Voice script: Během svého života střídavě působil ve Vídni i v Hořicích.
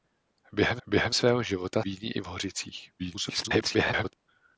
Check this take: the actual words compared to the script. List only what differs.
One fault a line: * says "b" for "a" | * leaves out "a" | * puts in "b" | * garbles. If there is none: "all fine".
* puts in "během"
* leaves out "střídavě působil ve"
* garbles